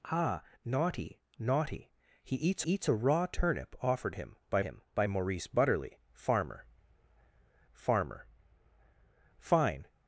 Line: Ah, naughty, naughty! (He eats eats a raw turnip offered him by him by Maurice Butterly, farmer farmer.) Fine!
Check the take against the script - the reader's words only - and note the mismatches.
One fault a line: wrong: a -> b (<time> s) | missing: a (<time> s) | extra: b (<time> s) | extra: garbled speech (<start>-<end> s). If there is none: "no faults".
no faults